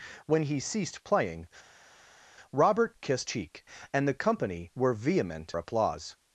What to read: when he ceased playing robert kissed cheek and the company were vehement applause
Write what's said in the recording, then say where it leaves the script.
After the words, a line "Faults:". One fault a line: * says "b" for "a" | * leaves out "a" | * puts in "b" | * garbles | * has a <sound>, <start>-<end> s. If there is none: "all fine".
when he ceased playing robert kissed cheek and the company were vehement applause
Faults:
all fine